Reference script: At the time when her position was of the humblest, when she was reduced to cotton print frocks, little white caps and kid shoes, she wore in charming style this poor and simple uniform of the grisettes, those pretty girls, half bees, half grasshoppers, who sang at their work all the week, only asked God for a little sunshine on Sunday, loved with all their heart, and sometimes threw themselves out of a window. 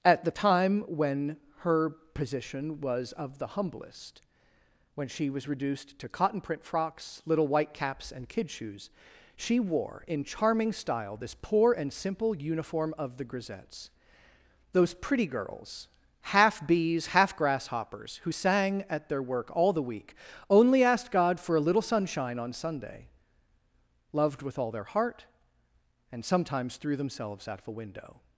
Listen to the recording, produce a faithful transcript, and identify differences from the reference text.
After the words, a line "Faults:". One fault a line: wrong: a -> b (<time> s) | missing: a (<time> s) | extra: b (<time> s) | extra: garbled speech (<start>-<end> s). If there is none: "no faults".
At the time when her position was of the humblest, when she was reduced to cotton print frocks, little white caps and kid shoes, she wore in charming style this poor and simple uniform of the grisettes, those pretty girls, half bees, half grasshoppers, who sang at their work all the week, only asked God for a little sunshine on Sunday, loved with all their heart, and sometimes threw themselves out of a window.
Faults:
no faults